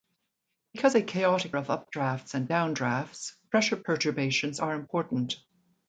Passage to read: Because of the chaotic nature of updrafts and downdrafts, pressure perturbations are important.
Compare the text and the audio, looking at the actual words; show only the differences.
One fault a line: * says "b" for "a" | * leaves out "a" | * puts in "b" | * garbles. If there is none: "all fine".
* leaves out "of"
* leaves out "nature"